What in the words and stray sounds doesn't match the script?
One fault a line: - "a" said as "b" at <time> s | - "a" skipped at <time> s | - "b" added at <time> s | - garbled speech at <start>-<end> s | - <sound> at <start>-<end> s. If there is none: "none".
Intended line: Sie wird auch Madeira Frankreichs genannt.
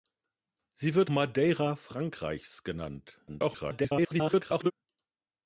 - "auch" skipped at 1.1 s
- garbled speech at 3.3-4.7 s